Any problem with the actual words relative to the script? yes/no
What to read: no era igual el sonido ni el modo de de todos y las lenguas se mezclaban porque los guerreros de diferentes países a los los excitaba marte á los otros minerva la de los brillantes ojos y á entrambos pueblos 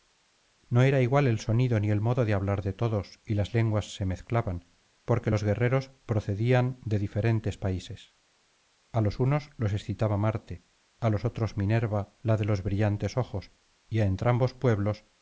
yes